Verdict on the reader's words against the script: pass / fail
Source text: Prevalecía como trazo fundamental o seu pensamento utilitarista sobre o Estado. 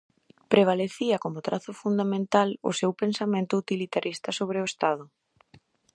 pass